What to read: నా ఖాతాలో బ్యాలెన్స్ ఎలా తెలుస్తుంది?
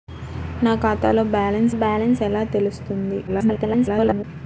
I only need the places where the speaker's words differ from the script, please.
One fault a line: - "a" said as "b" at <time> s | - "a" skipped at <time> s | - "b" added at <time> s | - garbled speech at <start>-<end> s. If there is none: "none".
- "బ్యాలెన్స్" added at 1.7 s
- garbled speech at 3.3-4.2 s